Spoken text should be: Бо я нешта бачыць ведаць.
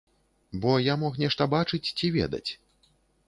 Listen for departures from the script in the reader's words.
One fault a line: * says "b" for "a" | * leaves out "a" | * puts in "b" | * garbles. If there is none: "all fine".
* puts in "мог"
* puts in "ці"